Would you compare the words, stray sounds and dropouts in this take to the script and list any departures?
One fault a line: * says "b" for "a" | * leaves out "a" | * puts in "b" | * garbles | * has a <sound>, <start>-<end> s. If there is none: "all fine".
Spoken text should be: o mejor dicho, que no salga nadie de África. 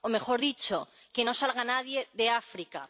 all fine